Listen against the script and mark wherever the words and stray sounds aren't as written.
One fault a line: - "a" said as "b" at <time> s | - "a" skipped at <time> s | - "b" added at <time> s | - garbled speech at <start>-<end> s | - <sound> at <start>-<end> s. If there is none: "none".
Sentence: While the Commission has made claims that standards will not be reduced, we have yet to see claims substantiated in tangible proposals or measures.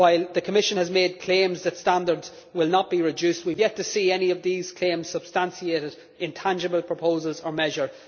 - "any of these" added at 4.1 s